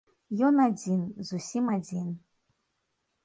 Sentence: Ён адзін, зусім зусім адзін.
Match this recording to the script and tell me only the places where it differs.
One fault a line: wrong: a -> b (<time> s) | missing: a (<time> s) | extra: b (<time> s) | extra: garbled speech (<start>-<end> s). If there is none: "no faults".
missing: зусім (1.6 s)